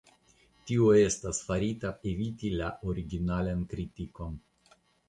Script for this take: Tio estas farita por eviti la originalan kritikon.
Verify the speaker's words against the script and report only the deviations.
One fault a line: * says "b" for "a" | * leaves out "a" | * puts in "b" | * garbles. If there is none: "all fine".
* leaves out "por"